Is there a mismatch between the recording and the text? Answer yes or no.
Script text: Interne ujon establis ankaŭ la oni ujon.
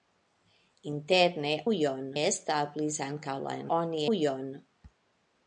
no